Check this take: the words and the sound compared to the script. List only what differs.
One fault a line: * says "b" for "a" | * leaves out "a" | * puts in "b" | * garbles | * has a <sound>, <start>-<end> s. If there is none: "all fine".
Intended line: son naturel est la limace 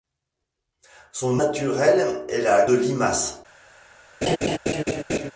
* has a laugh, 4.2-5.3 s